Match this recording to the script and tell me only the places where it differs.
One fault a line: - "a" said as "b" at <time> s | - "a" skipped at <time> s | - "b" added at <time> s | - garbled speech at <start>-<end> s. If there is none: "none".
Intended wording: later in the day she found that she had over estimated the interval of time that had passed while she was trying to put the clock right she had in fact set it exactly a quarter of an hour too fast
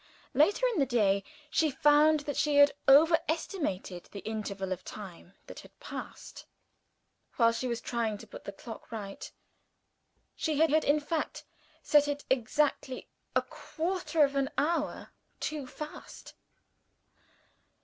- "had" added at 10.7 s